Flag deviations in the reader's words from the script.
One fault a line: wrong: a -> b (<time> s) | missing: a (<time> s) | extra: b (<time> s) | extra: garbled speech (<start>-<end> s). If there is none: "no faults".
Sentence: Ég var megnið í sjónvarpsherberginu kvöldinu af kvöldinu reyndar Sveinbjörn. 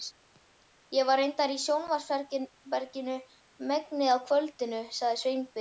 wrong: megnið -> reyndar (1.2 s)
wrong: kvöldinu -> megnið (3.7 s)
wrong: reyndar -> sagði (5.0 s)